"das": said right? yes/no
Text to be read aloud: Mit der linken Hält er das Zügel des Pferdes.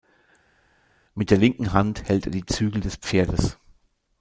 no